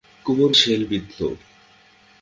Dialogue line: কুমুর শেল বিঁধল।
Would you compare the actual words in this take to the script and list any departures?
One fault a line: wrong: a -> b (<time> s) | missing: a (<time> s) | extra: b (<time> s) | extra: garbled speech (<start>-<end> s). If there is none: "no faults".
no faults